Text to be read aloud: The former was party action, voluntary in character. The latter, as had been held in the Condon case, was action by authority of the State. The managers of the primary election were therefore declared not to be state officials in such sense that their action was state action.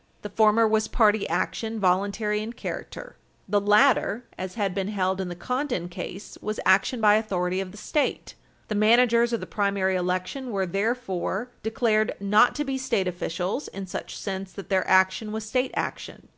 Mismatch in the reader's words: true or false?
false